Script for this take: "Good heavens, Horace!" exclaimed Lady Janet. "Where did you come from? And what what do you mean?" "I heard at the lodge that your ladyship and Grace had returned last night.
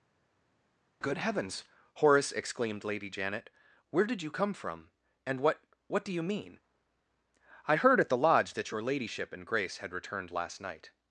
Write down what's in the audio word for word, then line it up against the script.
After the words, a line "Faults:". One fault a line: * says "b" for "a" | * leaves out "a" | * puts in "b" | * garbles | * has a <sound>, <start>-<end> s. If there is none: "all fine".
"Good heavens, Horace!" exclaimed Lady Janet. "Where did you come from? And what what do you mean?" "I heard at the lodge that your ladyship and Grace had returned last night.
Faults:
all fine